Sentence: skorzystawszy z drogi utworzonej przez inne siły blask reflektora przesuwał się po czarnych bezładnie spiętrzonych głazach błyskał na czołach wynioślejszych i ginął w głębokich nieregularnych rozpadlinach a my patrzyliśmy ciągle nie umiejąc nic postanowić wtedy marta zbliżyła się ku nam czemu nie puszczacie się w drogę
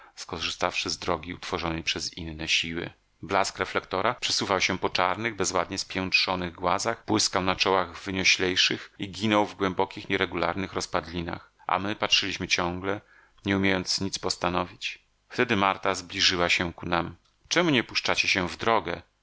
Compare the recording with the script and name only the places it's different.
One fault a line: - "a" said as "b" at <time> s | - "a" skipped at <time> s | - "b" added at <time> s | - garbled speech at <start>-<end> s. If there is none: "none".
none